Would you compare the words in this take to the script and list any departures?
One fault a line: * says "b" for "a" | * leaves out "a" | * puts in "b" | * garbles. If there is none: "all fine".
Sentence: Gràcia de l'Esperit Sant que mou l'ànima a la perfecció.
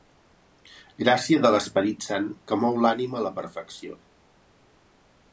all fine